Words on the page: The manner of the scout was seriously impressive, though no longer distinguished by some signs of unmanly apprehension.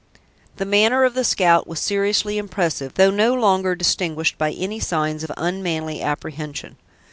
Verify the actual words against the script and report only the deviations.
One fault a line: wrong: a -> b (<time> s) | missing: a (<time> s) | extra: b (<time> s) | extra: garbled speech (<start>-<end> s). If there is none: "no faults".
wrong: some -> any (4.5 s)